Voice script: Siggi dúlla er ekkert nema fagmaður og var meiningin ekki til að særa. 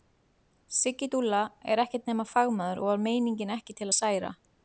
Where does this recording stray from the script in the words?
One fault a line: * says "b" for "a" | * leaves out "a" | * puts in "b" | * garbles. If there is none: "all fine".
all fine